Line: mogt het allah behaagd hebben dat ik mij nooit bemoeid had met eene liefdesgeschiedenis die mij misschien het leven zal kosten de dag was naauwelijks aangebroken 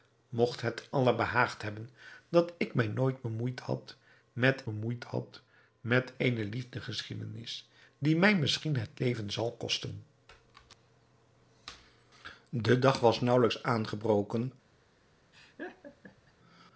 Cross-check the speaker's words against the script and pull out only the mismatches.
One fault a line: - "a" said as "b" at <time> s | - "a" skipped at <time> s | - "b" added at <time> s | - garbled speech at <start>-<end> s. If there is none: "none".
- "bemoeid had met" added at 4.6 s